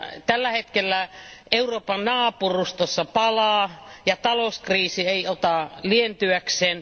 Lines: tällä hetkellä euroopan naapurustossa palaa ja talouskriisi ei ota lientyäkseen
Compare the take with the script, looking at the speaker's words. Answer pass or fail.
pass